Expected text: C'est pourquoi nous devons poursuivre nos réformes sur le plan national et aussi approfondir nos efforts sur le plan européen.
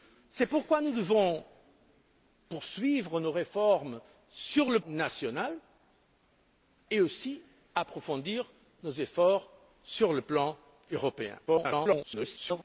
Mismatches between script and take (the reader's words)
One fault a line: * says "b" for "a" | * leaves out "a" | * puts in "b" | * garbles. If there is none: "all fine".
* leaves out "plan"
* garbles